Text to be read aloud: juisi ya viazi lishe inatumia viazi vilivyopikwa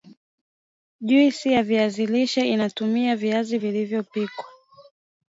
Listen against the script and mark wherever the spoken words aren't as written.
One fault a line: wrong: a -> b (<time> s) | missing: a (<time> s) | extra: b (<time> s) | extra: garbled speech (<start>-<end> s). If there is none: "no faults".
no faults